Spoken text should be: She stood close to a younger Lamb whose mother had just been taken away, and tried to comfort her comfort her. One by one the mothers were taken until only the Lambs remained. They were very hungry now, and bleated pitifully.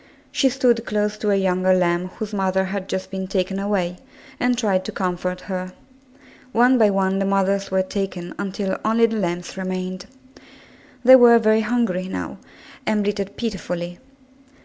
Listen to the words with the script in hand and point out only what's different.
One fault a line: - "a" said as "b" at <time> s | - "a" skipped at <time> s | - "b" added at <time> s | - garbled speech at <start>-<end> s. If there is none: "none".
- "comfort her" skipped at 5.7 s